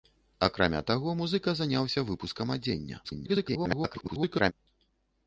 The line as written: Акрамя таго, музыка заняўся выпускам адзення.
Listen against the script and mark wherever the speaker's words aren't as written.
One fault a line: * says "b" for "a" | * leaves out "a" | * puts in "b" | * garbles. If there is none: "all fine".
* garbles